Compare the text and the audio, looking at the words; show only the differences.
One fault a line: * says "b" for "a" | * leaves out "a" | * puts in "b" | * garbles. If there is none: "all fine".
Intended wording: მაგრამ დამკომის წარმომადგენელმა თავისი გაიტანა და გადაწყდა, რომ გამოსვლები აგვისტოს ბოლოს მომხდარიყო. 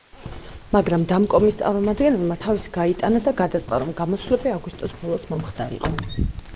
all fine